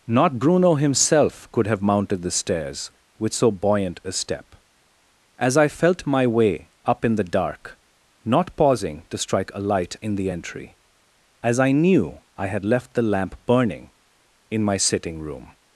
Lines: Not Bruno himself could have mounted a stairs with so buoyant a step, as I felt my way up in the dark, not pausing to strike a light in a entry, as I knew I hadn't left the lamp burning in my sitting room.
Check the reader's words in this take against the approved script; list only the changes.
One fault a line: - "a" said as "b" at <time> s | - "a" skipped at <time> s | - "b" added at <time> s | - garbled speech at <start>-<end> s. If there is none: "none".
- "a" said as "the" at 2.2 s
- "a" said as "the" at 10.2 s
- "hadn't" said as "had" at 12.5 s